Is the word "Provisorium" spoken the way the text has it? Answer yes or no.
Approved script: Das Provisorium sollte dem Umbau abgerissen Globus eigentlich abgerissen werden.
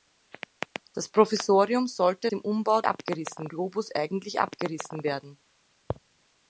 yes